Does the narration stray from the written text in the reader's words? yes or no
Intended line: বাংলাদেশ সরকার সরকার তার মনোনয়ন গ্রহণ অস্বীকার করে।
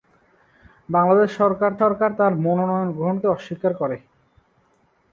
no